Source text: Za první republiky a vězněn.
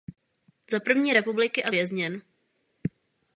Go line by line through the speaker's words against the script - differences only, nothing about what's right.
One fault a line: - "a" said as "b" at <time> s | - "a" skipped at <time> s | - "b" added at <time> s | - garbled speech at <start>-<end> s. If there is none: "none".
none